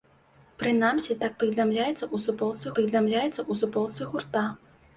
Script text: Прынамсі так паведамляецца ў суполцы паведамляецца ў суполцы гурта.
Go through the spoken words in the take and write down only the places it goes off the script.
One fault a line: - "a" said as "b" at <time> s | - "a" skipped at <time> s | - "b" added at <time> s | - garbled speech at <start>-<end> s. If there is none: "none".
none